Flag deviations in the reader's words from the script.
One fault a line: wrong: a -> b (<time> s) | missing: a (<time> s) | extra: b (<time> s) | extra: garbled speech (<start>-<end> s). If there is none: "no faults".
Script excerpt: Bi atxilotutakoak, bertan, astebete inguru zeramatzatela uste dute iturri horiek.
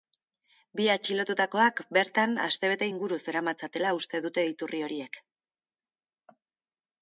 no faults